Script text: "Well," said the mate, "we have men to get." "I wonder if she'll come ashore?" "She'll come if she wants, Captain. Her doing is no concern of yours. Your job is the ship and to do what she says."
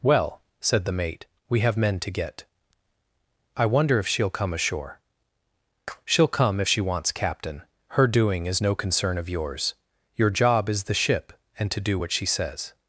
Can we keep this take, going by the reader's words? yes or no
yes